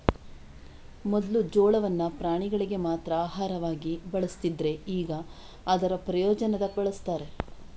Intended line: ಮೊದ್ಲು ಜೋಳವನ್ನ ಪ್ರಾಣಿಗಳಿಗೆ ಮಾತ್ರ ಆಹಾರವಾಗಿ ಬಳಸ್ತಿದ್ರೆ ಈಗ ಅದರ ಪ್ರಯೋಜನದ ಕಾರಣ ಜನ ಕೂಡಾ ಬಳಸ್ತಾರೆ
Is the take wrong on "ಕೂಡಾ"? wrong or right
wrong